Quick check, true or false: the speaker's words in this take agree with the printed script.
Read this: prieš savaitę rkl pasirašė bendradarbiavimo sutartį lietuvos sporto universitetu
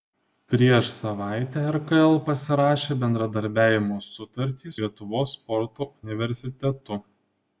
true